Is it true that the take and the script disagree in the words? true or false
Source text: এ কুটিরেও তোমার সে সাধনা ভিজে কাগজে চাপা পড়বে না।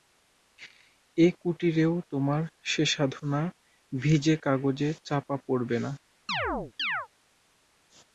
false